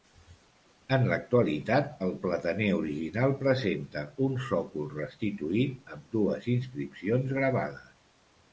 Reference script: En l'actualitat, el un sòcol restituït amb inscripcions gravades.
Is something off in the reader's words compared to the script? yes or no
yes